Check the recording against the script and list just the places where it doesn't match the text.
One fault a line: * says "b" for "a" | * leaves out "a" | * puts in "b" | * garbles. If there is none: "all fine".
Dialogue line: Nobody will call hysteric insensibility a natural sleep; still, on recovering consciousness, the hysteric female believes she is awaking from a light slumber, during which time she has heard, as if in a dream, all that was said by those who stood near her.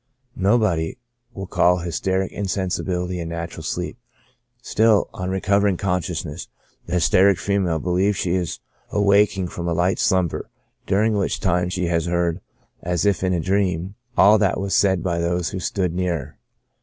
all fine